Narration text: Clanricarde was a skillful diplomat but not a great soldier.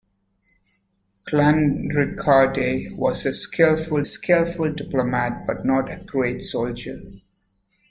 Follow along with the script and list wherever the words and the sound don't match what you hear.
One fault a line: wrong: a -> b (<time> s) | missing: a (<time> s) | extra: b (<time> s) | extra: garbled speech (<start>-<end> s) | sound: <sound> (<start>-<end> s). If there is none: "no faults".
extra: skillful (4.0 s)